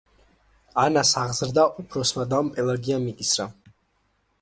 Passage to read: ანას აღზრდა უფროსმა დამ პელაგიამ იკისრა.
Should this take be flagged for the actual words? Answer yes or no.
no